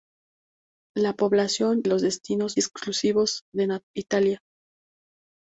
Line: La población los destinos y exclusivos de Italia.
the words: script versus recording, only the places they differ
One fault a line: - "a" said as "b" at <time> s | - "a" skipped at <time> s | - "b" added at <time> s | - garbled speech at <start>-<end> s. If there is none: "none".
none